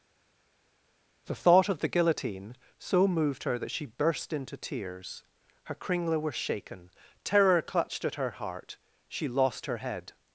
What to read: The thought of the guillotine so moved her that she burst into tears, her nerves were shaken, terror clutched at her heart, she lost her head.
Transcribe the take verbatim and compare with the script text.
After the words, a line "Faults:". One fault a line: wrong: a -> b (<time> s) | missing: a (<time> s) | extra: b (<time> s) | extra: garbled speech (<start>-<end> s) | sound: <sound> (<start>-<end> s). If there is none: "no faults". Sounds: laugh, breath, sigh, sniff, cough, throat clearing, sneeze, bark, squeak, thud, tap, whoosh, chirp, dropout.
The thought of the guillotine so moved her that she burst into tears, her kringla were shaken, terror clutched at her heart, she lost her head.
Faults:
wrong: nerves -> kringla (5.7 s)